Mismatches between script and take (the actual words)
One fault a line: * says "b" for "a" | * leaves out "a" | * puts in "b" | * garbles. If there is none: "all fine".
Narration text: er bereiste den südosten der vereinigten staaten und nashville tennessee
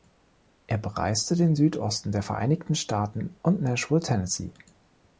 all fine